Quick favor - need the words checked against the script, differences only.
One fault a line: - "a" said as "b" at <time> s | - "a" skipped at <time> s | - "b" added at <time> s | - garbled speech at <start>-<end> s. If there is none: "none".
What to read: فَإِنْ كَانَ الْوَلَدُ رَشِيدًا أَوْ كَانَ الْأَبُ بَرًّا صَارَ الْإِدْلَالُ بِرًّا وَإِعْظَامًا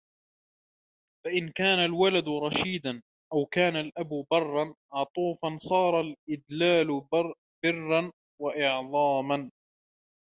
- "عَطُوفًا" added at 4.9 s